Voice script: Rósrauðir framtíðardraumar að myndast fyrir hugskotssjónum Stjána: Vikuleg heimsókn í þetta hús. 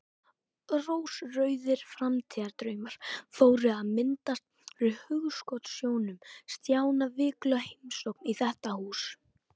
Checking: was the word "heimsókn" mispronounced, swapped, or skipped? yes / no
no